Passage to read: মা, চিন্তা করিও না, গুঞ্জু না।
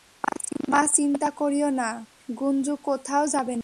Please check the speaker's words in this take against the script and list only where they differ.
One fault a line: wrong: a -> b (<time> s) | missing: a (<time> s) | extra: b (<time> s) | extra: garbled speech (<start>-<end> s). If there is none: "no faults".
extra: কোথাও যাবে (2.8 s)